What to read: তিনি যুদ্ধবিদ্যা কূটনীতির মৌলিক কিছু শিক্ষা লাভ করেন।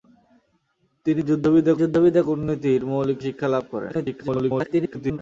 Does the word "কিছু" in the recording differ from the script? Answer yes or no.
yes